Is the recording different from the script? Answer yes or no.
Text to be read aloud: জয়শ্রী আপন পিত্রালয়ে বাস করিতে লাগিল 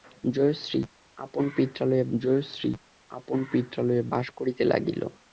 yes